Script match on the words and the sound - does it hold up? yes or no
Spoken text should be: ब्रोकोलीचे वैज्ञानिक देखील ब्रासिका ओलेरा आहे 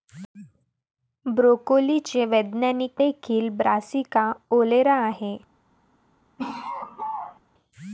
no